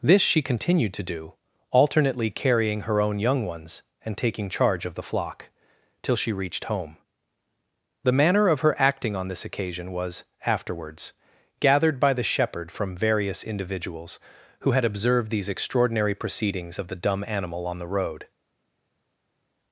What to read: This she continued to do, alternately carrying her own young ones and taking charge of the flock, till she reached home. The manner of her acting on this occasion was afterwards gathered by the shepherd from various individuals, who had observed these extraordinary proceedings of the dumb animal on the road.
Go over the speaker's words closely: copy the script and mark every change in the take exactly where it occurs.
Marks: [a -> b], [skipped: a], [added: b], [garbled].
This she continued to do, alternately carrying her own young ones and taking charge of the flock, till she reached home. The manner of her acting on this occasion was afterwards gathered by the shepherd from various individuals, who had observed these extraordinary proceedings of the dumb animal on the road.